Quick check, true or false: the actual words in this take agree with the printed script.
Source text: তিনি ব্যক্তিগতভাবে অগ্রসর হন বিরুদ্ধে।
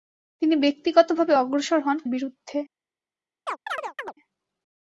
true